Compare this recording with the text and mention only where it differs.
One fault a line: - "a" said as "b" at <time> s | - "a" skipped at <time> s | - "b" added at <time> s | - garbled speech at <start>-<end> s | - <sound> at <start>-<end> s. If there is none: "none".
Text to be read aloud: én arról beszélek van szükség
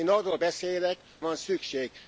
none